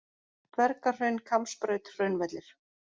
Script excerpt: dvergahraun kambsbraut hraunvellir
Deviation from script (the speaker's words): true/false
false